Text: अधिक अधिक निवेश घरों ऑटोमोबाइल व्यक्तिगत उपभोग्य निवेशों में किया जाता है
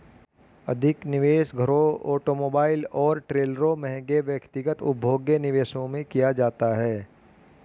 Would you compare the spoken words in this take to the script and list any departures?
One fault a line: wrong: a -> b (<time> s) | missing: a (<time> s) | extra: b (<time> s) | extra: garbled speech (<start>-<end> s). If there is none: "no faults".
missing: अधिक (1.1 s)
extra: और ट्रेलरों महंगे (2.9 s)